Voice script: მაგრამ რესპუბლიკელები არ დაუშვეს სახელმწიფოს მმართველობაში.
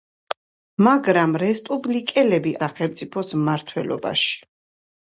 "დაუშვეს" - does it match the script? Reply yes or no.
no